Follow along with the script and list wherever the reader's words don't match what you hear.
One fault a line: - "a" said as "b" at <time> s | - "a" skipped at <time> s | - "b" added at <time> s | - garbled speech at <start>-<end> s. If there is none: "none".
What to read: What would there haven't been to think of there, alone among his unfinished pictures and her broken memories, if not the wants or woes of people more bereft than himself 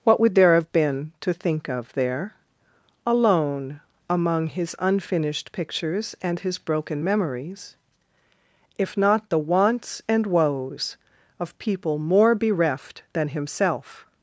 - "haven't" said as "have" at 0.6 s
- "her" said as "his" at 6.4 s
- "or" said as "and" at 10.1 s